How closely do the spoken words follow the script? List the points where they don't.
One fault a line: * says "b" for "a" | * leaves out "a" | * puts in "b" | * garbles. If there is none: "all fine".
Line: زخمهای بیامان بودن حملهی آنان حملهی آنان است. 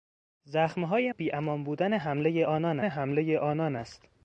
all fine